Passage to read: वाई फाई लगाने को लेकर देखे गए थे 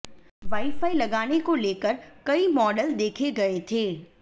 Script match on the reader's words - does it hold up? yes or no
no